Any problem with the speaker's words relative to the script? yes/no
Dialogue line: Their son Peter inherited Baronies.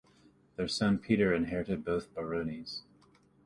yes